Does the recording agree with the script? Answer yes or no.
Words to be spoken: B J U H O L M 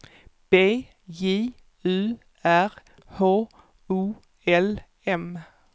no